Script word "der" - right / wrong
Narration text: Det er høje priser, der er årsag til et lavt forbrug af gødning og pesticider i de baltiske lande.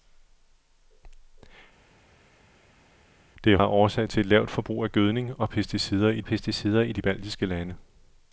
wrong